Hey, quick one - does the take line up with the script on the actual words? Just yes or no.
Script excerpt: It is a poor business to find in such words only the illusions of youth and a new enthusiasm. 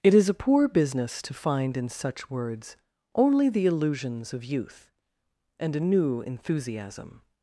yes